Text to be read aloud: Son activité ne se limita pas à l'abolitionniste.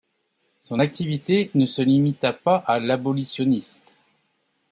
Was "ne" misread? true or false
false